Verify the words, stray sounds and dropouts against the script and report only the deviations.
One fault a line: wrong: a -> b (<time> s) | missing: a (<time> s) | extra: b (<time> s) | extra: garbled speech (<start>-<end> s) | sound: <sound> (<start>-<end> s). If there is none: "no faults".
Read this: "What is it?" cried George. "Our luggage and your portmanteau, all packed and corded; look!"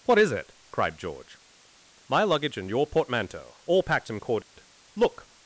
wrong: Our -> My (2.1 s)
sound: dropout (4.4-4.6 s)